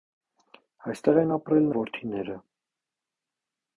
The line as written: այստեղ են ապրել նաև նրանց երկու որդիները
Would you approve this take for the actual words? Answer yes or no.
no